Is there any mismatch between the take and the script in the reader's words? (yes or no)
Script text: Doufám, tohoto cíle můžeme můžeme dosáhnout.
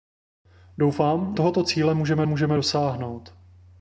no